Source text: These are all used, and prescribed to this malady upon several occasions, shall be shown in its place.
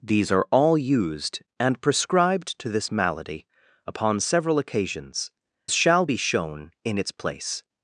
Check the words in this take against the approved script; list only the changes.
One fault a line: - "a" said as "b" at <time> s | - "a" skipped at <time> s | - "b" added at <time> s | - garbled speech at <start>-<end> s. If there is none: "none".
none